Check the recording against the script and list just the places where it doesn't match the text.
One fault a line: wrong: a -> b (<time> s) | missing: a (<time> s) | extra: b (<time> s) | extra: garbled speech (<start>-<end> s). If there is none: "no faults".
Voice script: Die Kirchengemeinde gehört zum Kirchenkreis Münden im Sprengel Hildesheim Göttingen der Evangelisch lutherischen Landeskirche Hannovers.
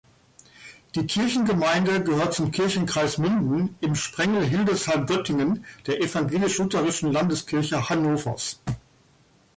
no faults